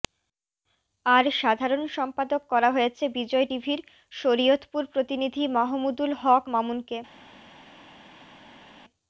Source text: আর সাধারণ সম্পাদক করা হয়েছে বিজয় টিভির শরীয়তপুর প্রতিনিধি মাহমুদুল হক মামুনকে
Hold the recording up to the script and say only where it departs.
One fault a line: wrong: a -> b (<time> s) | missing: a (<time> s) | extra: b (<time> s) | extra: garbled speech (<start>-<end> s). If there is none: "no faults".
no faults